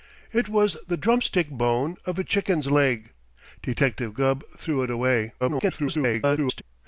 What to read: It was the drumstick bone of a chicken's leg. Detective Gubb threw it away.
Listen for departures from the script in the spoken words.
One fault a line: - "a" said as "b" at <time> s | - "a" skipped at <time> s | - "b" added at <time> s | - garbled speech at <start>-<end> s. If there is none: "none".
- garbled speech at 5.4-6.6 s